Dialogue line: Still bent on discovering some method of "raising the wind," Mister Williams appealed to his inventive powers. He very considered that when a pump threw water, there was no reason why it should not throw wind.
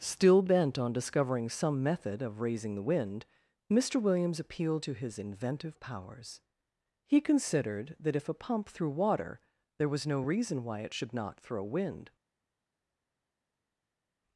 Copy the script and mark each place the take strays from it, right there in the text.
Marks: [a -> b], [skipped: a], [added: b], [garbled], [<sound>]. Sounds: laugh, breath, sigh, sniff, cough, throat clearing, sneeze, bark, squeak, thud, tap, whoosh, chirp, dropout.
Still bent on discovering some method of "raising the wind," Mister Williams appealed to his inventive powers. He [skipped: very] considered that [when -> if] a pump threw water, there was no reason why it should not throw wind.